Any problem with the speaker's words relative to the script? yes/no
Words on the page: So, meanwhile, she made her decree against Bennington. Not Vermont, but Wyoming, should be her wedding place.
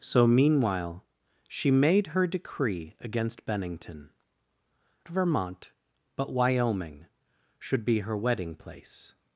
yes